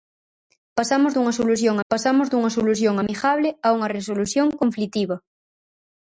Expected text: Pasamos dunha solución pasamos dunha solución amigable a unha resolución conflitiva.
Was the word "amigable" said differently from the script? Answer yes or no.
no